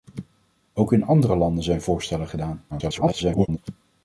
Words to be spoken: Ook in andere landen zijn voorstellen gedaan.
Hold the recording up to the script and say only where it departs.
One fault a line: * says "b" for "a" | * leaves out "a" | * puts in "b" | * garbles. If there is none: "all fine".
* garbles